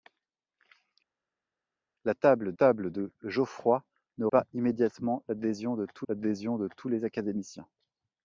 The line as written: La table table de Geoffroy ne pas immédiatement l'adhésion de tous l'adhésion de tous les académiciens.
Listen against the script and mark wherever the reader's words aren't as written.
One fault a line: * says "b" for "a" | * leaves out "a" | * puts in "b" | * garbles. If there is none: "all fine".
all fine